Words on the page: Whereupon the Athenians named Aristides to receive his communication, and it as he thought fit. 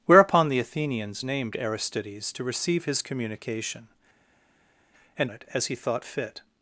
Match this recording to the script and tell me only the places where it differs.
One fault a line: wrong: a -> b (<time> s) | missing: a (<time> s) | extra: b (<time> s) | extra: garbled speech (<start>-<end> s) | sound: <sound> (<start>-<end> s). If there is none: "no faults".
no faults